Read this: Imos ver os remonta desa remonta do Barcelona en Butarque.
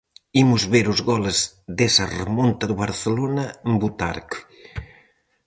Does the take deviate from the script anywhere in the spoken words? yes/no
yes